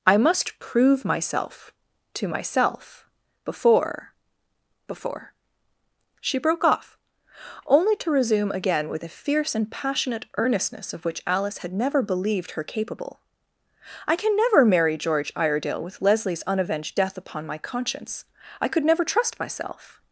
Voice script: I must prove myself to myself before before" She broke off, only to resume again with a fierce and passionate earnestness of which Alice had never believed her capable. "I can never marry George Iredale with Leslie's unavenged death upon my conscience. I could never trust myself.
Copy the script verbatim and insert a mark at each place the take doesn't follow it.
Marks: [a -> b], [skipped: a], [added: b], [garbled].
I must prove myself to myself before before" She broke off, only to resume again with a fierce and passionate earnestness of which Alice had never believed her capable. "I can never marry George Iredale with Leslie's unavenged death upon my conscience. I could never trust myself.